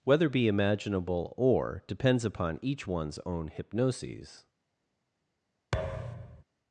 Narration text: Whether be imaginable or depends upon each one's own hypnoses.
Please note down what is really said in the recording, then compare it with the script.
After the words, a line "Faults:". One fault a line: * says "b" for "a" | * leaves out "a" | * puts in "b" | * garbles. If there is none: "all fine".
Whether be imaginable or depends upon each one's own hypnoses.
Faults:
all fine